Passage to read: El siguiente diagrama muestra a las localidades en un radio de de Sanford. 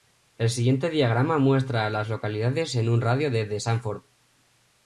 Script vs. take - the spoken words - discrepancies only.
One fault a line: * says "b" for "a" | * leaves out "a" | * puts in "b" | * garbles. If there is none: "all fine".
all fine